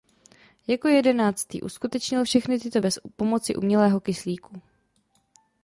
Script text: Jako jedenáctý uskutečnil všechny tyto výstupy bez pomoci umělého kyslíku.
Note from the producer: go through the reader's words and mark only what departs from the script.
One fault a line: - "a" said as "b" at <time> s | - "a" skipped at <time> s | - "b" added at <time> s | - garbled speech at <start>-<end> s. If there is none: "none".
- "výstupy" skipped at 2.8 s